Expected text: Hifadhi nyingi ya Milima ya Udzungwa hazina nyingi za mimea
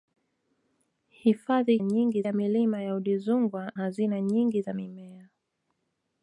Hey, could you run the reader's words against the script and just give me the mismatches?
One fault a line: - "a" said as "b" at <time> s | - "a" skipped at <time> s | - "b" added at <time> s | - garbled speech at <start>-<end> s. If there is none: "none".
none